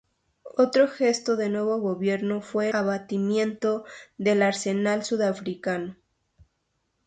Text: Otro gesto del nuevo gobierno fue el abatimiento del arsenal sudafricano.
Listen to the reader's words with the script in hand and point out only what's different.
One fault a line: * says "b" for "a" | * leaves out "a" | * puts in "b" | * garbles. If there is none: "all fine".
* leaves out "el"